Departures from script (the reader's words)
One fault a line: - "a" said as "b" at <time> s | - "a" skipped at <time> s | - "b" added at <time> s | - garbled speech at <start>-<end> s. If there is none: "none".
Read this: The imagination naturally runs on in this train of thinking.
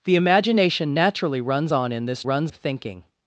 - "train" said as "runs" at 2.2 s